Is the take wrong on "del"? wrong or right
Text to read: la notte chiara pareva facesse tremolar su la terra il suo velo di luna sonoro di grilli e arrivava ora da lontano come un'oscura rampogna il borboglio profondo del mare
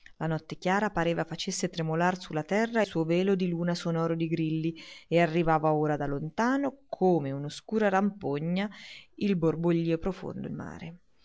wrong